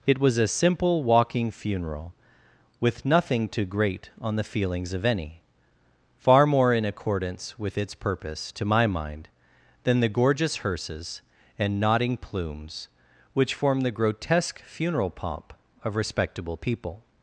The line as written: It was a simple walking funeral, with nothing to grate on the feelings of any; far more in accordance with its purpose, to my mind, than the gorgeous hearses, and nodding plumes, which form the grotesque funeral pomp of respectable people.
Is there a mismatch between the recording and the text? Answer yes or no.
no